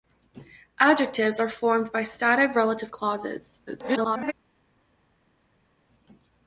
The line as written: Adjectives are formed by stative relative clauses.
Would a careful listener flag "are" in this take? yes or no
no